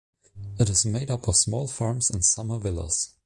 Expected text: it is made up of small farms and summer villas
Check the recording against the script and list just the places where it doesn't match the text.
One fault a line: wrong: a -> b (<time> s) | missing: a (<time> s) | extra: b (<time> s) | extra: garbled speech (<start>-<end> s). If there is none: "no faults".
no faults